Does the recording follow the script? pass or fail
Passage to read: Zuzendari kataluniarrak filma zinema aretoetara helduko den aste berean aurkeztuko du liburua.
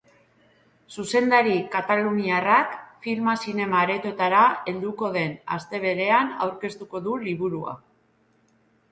pass